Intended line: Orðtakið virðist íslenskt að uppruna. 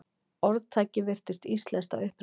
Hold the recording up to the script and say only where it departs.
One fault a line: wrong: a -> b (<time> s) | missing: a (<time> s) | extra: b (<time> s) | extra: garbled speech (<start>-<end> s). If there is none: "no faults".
no faults